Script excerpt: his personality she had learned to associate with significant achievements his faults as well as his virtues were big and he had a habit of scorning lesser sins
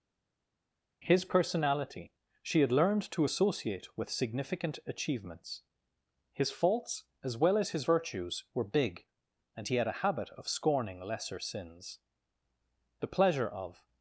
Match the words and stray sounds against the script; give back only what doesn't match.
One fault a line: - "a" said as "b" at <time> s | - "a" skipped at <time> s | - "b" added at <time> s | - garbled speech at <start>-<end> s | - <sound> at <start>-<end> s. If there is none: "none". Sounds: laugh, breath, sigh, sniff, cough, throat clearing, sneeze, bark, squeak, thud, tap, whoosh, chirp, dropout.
- "the pleasure of" added at 13.0 s